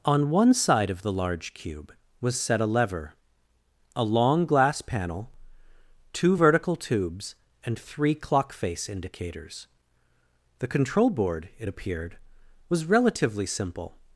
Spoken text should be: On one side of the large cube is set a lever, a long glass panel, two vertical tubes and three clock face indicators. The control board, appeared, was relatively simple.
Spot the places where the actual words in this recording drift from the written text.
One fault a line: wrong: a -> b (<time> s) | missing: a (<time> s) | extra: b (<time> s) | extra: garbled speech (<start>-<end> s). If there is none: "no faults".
wrong: is -> was (2.2 s)
extra: it (11.6 s)